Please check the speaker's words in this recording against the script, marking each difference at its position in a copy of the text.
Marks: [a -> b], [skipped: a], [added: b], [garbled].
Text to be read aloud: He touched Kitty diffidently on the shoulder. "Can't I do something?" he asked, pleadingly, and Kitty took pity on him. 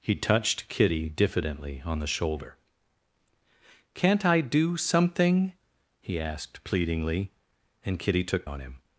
He touched Kitty diffidently on the shoulder. "Can't I do something?" he asked, pleadingly, and Kitty took [skipped: pity] on him.